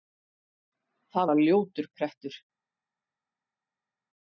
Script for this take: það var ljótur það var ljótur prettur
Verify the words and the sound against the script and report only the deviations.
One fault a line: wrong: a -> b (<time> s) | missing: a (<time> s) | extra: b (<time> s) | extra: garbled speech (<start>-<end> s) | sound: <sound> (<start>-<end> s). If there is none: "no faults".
missing: það var ljótur (1.9 s)